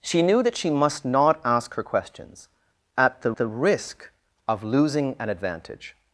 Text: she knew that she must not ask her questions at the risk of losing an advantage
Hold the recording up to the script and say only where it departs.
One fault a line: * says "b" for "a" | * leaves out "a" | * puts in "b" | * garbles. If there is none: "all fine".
* puts in "the"